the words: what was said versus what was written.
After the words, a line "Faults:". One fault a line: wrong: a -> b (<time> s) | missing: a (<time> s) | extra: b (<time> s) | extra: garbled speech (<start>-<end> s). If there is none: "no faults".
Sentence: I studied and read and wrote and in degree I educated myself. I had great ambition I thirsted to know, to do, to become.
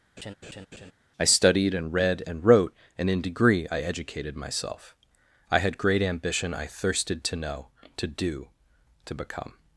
I studied and read and wrote and in degree I educated myself. I had great ambition I thirsted to know, to do, to become.
Faults:
no faults